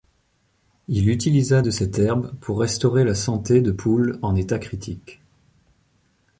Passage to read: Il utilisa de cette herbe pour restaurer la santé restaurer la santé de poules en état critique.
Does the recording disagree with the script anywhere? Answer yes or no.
yes